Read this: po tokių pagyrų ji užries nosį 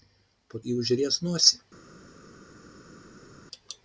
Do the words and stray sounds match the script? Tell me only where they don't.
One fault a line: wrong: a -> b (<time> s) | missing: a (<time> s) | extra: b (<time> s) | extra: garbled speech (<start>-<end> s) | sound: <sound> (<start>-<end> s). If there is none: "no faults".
missing: tokių pagyrų (0.6 s)